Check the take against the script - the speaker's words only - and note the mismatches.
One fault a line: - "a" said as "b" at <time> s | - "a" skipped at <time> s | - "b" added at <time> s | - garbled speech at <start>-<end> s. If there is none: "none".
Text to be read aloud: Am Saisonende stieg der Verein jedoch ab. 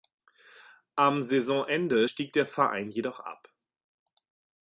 none